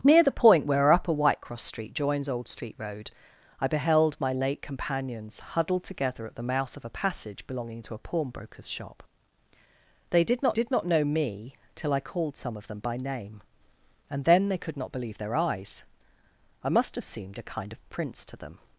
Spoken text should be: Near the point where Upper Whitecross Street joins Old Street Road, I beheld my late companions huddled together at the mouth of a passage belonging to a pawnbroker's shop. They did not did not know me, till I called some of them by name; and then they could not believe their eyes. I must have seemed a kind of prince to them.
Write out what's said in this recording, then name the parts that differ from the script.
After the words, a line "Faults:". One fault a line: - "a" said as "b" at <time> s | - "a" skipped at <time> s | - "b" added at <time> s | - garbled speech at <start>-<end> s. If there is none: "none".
Near the point where Upper Whitecross Street joins Old Street Road, I beheld my late companions huddled together at the mouth of a passage belonging to a pawnbroker's shop. They did not did not know me, till I called some of them by name; and then they could not believe their eyes. I must have seemed a kind of prince to them.
Faults:
none